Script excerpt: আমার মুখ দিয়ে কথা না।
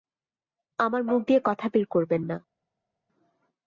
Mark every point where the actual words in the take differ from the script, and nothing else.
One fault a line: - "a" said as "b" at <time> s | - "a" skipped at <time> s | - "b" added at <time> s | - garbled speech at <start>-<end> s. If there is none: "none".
- "বের করবেন" added at 1.7 s